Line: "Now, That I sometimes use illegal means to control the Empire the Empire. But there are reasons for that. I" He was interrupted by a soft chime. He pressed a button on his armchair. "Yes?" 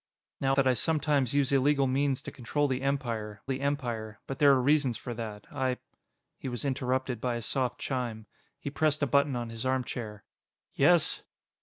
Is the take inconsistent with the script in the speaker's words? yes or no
no